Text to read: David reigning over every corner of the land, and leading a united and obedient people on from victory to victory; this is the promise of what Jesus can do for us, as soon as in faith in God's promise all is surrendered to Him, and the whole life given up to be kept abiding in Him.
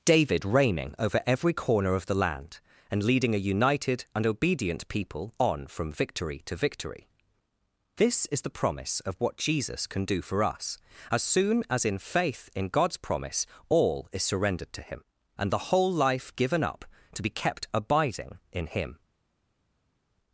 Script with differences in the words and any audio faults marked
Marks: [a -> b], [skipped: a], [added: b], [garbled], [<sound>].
David reigning over every corner of the land, and leading a united and obedient people on from victory to victory; this is the promise of what Jesus can do for us, as soon as in faith in God's promise all is surrendered to Him, and the whole life given up to be kept abiding in Him.